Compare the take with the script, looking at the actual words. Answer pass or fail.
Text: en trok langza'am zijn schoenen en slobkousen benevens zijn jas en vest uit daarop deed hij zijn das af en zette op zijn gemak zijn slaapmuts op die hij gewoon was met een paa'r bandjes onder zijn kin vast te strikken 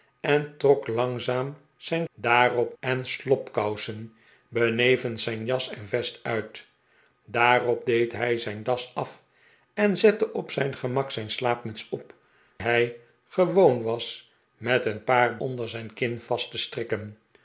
fail